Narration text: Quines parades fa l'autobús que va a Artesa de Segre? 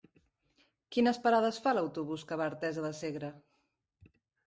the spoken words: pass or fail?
pass